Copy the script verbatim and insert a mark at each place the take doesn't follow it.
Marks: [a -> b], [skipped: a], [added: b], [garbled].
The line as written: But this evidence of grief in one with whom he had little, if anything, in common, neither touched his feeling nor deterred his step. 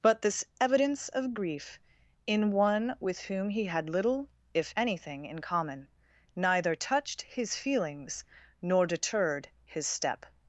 But this evidence of grief in one with whom he had little, if anything, in common, neither touched his [feeling -> feelings] nor deterred his step.